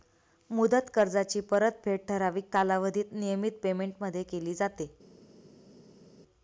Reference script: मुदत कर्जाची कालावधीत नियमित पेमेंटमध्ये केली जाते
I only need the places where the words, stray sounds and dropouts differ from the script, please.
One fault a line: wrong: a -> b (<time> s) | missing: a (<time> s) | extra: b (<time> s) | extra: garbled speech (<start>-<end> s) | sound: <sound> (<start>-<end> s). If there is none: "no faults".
extra: परतफेड ठराविक (1.5 s)